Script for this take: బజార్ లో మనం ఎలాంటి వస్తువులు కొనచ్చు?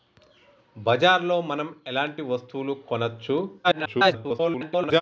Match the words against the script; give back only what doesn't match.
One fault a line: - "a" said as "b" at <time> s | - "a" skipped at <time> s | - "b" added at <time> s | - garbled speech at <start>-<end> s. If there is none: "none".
- garbled speech at 3.6-5.0 s